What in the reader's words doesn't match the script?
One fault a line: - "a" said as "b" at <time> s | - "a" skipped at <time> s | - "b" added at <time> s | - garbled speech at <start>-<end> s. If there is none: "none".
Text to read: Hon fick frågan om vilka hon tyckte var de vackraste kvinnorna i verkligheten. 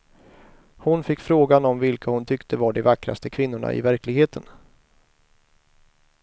none